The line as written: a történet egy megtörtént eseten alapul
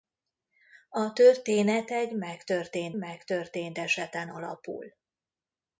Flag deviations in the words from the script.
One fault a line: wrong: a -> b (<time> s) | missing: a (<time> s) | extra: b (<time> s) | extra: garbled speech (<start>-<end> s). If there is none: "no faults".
extra: megtörtént (3.0 s)